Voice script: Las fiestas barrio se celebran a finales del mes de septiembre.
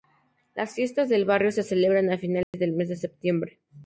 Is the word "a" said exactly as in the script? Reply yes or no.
yes